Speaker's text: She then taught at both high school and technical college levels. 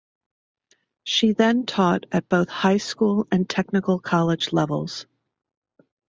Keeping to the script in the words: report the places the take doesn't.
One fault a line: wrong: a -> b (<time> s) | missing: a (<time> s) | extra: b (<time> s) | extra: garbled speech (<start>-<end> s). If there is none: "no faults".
no faults